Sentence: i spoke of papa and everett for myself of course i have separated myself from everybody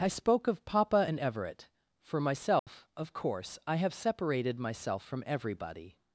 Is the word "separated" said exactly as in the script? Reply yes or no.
yes